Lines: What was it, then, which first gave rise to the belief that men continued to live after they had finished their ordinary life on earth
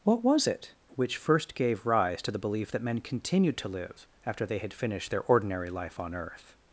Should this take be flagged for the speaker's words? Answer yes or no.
yes